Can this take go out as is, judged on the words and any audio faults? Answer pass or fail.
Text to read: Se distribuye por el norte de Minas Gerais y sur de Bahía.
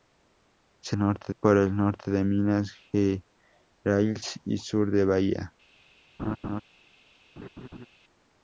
fail